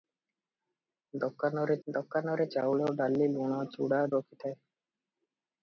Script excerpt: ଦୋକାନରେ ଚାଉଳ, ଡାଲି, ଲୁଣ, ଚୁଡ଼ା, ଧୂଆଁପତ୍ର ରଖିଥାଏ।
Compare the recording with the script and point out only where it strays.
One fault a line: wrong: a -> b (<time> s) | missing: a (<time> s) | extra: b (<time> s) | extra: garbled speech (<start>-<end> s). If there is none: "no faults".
extra: ଦୋକାନରେ (1.9 s)
missing: ଧୂଆଁପତ୍ର (4.0 s)